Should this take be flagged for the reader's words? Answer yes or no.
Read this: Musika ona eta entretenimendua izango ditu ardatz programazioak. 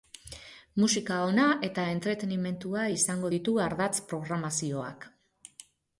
no